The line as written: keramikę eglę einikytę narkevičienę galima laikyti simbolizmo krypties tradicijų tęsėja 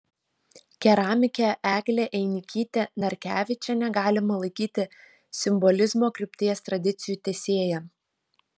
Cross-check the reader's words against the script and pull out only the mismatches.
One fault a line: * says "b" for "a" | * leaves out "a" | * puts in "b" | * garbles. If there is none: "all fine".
all fine